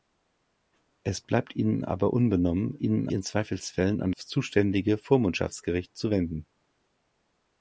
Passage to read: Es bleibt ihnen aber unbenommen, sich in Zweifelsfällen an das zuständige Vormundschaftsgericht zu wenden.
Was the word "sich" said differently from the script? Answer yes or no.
yes